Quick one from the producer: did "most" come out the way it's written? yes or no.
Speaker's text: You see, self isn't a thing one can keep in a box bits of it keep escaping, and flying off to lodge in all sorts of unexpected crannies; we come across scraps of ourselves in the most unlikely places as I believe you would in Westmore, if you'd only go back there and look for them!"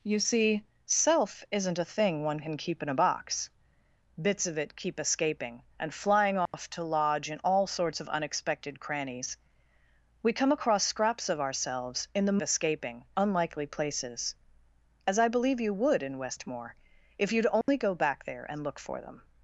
no